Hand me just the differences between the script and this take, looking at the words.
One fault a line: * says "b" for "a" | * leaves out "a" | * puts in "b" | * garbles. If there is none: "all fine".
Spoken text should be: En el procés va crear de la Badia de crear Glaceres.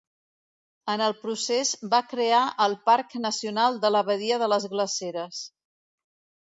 * puts in "el Parc Nacional"
* says "les" for "crear"